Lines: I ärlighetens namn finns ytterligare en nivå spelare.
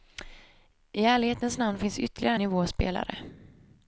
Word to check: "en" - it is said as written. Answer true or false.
false